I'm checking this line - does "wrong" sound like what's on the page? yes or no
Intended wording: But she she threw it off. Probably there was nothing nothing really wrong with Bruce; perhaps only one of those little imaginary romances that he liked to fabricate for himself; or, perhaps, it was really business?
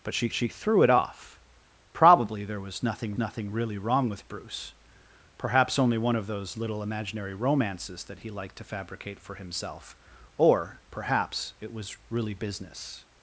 yes